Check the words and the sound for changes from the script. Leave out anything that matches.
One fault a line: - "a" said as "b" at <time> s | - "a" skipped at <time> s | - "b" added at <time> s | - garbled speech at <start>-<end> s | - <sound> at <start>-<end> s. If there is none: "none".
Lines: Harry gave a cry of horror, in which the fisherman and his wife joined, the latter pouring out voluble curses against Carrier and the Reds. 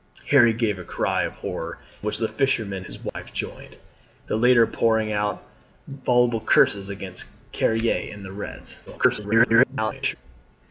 - "in" skipped at 1.8 s
- "and" skipped at 2.9 s
- dropout at 3.1-3.2 s
- garbled speech at 8.9-10.2 s